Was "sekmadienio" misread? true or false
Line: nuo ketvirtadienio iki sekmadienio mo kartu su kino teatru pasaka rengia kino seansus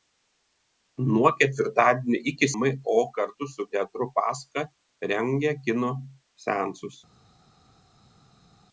true